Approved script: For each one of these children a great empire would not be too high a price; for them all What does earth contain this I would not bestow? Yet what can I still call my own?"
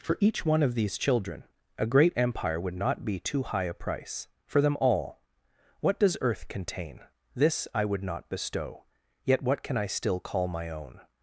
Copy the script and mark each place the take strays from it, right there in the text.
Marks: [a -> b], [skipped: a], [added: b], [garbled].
For each one of these children a great empire would not be too high a price; for them all What does earth contain this I would not bestow? Yet what can I still call my own?"